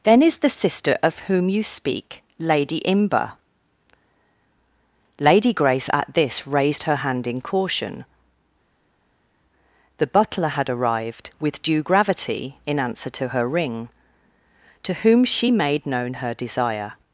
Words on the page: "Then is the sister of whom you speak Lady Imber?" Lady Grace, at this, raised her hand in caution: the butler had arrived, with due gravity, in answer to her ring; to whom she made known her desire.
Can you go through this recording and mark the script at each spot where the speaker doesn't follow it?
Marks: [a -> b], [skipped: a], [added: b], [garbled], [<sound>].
"Then is the sister of whom you speak Lady Imber?" Lady Grace, at this, raised her hand in caution: the butler had arrived, with due gravity, in answer to her ring; to whom she made known her desire.